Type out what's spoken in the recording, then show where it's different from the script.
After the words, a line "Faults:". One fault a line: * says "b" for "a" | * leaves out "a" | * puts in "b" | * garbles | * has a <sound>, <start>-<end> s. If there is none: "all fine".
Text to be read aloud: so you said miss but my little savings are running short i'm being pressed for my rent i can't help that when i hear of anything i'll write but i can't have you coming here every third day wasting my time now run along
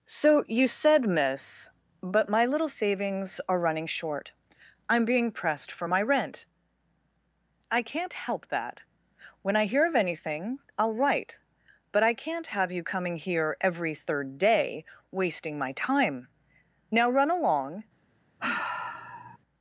so you said miss but my little savings are running short i'm being pressed for my rent i can't help that when i hear of anything i'll write but i can't have you coming here every third day wasting my time now run along
Faults:
* has a sigh, 18.4-19.4 s